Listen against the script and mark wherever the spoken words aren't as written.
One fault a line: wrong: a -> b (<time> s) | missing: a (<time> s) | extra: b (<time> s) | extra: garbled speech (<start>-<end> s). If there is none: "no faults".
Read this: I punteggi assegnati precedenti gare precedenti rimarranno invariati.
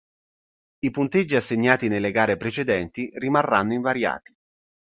wrong: precedenti -> nelle (1.9 s)